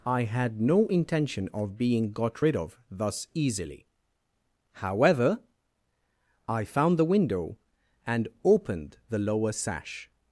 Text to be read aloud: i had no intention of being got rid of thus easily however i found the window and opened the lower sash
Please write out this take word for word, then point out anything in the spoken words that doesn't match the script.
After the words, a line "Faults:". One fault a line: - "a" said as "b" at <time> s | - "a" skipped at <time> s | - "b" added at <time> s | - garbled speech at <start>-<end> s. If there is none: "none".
i had no intention of being got rid of thus easily however i found the window and opened the lower sash
Faults:
none